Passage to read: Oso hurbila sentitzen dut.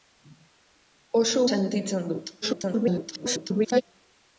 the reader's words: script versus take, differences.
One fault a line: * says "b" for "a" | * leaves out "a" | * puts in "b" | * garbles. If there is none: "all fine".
* leaves out "hurbila"
* garbles